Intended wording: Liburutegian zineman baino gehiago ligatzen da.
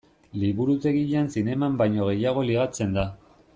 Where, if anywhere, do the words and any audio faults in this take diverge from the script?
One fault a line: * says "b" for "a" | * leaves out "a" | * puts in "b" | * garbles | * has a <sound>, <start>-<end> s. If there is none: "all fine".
all fine